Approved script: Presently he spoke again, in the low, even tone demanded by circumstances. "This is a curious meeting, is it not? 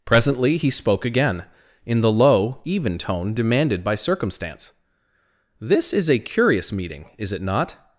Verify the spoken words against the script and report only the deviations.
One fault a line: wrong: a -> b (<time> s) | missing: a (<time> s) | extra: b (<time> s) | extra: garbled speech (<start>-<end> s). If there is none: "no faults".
wrong: circumstances -> circumstance (3.9 s)